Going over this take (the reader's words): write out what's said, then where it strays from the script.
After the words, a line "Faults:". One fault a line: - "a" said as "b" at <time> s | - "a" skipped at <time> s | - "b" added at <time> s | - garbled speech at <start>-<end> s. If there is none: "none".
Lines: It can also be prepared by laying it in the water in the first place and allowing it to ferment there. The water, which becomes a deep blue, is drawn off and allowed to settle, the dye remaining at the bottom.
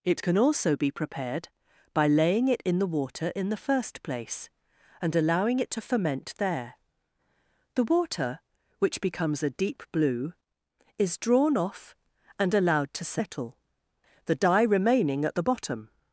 It can also be prepared by laying it in the water in the first place and allowing it to ferment there. The water, which becomes a deep blue, is drawn off and allowed to settle, the dye remaining at the bottom.
Faults:
none